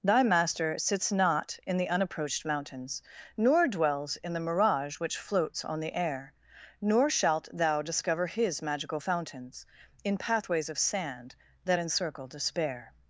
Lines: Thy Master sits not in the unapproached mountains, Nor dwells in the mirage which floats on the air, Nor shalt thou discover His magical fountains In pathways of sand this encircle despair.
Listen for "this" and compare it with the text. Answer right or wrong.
wrong